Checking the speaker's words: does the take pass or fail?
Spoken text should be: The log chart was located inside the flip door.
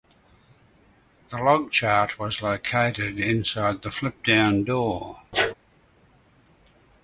fail